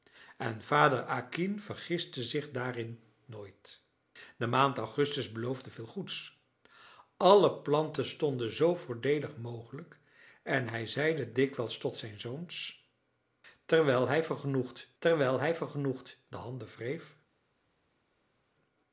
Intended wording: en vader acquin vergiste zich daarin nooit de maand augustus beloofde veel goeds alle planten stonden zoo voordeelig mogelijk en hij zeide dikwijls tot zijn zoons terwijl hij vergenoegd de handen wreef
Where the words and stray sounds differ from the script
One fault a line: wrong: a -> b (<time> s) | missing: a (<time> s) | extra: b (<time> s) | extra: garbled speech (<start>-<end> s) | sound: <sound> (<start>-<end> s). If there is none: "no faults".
extra: terwijl hij vergenoegd (15.0 s)